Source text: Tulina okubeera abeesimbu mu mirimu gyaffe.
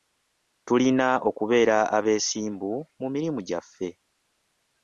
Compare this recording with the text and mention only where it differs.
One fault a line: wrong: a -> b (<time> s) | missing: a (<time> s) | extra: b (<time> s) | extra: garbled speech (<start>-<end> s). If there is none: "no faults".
no faults